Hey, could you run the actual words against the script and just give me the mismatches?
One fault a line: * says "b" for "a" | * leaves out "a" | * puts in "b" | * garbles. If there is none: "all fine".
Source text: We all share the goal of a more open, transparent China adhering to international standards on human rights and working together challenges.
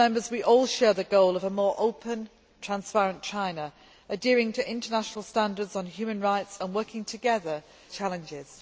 all fine